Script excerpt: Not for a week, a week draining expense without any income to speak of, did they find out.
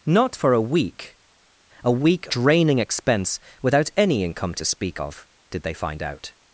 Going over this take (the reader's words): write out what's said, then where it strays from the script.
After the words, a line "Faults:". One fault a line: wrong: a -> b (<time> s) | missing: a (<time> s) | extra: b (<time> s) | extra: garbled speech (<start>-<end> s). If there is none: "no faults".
Not for a week, a week draining expense without any income to speak of, did they find out.
Faults:
no faults